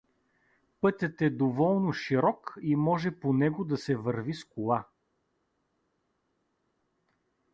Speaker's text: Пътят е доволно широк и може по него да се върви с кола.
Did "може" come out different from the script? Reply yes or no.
no